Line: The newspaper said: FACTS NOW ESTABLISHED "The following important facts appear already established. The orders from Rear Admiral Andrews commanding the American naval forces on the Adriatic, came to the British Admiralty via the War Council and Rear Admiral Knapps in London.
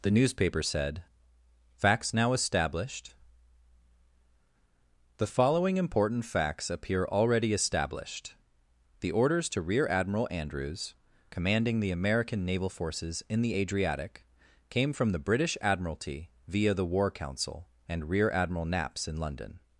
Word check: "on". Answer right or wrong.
wrong